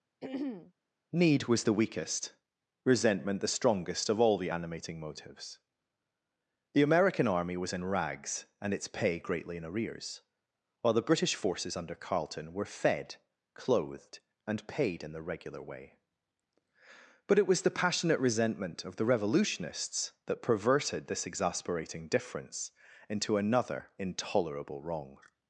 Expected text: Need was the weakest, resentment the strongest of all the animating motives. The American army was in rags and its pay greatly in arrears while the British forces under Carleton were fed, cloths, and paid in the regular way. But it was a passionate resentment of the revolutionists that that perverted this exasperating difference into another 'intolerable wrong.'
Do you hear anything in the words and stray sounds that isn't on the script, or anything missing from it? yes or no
yes